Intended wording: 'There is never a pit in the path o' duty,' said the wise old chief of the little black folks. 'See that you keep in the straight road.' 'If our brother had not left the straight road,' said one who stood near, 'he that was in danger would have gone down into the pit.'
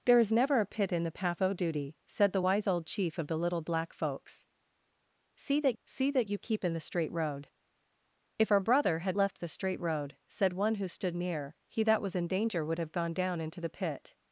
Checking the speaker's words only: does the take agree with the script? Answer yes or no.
no